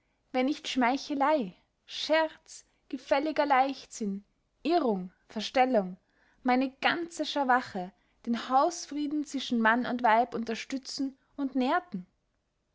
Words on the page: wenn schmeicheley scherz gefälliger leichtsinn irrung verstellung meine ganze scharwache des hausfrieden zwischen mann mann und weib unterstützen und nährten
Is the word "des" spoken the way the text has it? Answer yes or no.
no